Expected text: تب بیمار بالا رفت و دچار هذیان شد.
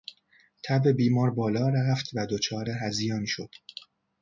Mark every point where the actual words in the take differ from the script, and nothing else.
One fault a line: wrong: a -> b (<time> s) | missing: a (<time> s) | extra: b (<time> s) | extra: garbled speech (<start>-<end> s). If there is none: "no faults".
no faults